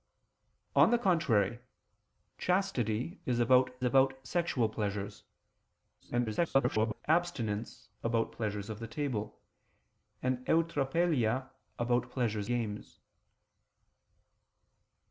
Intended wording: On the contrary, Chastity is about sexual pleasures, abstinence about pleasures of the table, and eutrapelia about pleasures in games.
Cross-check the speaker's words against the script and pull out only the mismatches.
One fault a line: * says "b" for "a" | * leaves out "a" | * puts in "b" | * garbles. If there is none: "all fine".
* puts in "about"
* garbles
* leaves out "in"